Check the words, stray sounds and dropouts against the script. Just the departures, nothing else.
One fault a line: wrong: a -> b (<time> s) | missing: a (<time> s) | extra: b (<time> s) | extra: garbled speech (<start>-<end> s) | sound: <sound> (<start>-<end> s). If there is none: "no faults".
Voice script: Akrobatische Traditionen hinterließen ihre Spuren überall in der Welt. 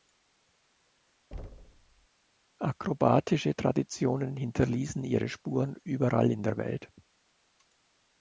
sound: thud (1.3-2.1 s)